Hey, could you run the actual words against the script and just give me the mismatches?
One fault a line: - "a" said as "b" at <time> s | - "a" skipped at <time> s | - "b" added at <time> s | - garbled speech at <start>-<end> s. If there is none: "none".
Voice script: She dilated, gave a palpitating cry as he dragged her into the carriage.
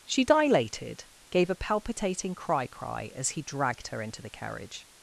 - "cry" added at 2.7 s